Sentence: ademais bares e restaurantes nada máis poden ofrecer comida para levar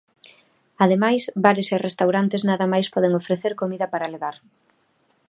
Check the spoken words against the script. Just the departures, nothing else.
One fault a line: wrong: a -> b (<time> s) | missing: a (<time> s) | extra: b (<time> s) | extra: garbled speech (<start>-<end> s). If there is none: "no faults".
no faults